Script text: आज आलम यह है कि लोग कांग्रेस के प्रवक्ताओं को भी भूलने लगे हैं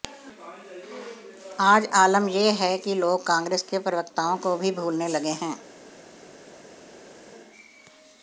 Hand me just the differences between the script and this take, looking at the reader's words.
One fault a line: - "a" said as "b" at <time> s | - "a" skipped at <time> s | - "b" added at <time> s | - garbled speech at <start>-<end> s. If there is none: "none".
none